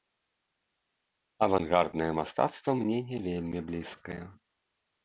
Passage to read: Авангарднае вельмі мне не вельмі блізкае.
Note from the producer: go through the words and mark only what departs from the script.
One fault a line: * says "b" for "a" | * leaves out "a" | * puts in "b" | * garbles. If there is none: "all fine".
* says "мастацтва" for "вельмі"